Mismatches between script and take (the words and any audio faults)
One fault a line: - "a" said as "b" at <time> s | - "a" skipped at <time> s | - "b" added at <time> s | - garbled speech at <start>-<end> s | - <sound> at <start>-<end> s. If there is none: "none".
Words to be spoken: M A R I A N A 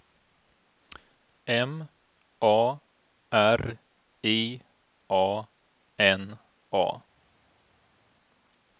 none